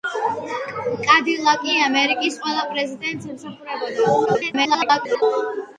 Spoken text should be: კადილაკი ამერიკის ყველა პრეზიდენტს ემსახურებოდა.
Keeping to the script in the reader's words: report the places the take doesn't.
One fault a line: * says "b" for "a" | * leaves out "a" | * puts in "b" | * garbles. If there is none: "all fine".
* garbles